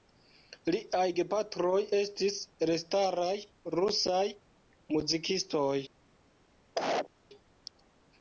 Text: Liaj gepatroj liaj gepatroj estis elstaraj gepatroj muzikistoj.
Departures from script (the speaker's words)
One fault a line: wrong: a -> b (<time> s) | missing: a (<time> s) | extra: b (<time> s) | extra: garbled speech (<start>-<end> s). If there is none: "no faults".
missing: liaj gepatroj (1.8 s)
wrong: gepatroj -> rusaj (3.8 s)